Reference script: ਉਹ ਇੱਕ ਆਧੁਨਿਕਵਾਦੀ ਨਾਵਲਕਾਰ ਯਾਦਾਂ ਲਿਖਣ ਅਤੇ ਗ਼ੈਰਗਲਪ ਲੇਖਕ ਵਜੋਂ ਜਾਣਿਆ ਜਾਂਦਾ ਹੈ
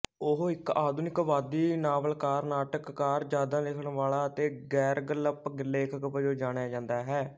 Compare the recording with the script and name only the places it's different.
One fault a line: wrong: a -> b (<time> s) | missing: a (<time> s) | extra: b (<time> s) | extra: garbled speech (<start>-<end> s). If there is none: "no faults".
extra: ਨਾਟਕਕਾਰ (2.5 s)
extra: ਵਾਲਾ (3.9 s)